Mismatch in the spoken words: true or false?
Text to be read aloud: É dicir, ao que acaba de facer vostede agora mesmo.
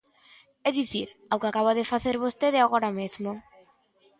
false